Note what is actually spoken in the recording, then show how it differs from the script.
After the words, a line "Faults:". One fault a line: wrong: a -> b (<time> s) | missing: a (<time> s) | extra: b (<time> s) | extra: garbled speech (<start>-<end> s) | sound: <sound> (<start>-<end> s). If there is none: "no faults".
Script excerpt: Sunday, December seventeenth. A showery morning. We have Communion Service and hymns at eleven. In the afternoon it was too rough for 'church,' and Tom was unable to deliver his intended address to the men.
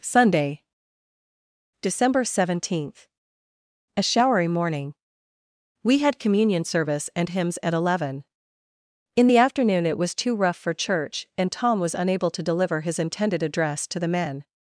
Sunday, December seventeenth. A showery morning. We had Communion Service and hymns at eleven. In the afternoon it was too rough for 'church,' and Tom was unable to deliver his intended address to the men.
Faults:
wrong: have -> had (6.0 s)